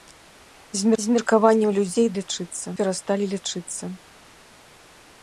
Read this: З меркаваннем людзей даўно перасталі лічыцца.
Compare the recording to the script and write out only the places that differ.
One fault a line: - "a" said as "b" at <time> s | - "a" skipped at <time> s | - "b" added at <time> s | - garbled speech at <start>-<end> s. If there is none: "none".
- "з" added at 1.0 s
- "даўно" said as "лічыцца" at 2.2 s